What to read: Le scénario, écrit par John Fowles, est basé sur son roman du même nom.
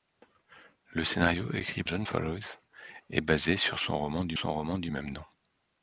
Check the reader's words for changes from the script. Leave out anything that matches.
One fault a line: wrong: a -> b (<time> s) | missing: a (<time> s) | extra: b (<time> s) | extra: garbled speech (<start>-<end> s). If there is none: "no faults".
missing: par (1.8 s)
extra: son roman du (4.4 s)